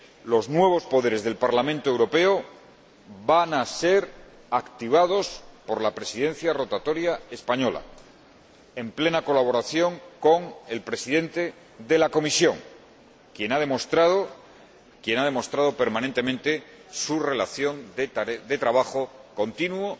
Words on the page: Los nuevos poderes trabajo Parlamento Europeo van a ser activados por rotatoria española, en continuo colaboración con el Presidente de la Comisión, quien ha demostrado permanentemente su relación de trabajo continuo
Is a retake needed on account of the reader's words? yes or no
yes